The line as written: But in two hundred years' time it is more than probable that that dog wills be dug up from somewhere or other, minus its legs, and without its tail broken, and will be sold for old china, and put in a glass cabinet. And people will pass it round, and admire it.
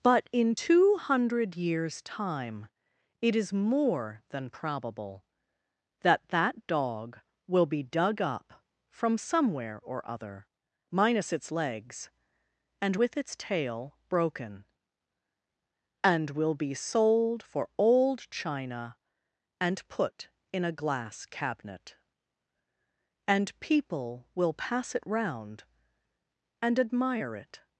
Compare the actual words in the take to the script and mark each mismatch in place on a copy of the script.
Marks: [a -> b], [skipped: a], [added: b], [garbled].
But in two hundred years' time it is more than probable that that dog [wills -> will] be dug up from somewhere or other, minus its legs, and [without -> with] its tail broken, and will be sold for old china, and put in a glass cabinet. And people will pass it round, and admire it.